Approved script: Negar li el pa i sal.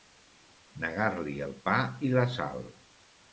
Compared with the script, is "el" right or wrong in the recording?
right